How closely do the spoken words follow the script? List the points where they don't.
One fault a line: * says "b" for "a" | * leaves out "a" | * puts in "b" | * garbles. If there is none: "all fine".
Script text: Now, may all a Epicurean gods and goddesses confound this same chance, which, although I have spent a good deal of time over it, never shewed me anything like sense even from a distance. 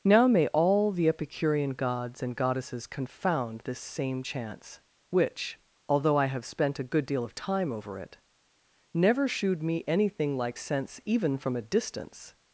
* says "the" for "a"